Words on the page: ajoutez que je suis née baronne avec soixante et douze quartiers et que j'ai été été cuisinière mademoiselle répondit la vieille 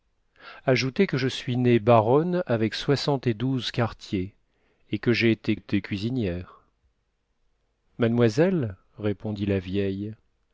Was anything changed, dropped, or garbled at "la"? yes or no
no